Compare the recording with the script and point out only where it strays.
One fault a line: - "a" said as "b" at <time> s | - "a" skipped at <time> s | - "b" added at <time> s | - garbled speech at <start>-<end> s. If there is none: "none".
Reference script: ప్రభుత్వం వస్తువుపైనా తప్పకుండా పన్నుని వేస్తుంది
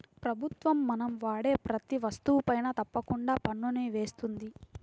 - "మనం వాడే ప్రతీ" added at 0.9 s